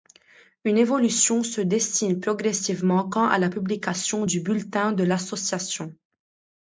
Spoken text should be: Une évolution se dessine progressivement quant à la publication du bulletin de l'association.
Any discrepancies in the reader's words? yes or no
no